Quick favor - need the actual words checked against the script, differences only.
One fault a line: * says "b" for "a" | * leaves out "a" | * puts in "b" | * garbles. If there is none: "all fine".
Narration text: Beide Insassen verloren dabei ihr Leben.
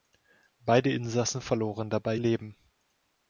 * leaves out "ihr"